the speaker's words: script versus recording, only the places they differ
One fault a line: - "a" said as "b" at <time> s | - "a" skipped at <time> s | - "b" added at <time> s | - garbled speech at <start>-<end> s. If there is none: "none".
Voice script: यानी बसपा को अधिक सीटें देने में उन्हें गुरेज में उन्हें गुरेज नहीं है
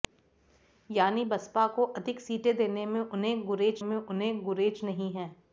none